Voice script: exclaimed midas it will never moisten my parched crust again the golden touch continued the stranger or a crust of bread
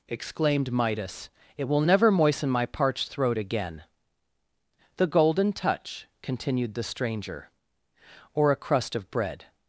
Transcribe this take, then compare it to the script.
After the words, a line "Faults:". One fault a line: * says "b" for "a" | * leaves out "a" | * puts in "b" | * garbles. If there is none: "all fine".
exclaimed midas it will never moisten my parched throat again the golden touch continued the stranger or a crust of bread
Faults:
* says "throat" for "crust"